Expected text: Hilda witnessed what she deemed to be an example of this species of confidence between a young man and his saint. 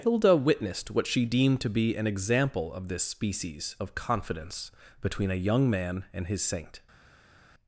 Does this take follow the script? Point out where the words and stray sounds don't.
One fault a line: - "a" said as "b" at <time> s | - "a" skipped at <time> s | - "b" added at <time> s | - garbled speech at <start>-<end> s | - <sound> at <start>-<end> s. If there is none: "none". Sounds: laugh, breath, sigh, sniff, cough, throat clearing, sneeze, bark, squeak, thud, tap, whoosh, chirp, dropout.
none